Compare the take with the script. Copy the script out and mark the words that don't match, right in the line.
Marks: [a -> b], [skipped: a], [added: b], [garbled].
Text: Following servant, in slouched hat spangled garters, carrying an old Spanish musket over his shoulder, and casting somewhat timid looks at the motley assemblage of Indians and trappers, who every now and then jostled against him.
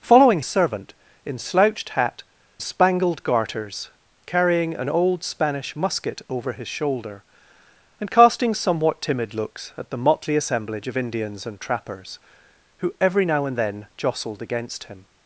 Following servant, in slouched hat spangled garters, carrying an old Spanish musket over his shoulder, and casting somewhat timid looks at the motley assemblage of Indians and trappers, who every now and then jostled against him.